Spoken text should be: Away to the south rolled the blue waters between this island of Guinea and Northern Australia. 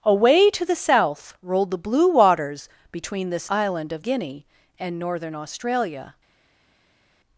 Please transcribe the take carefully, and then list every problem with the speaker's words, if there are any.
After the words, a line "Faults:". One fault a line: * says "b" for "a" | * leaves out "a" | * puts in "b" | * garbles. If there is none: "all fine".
Away to the south rolled the blue waters between this island of Guinea and Northern Australia.
Faults:
all fine